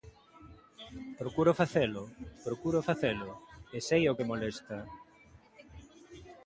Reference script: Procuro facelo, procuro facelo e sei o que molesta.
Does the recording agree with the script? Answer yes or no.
yes